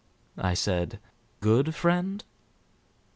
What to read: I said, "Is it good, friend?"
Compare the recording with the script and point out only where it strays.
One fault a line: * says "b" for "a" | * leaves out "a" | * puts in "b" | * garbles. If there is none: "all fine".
* leaves out "Is it"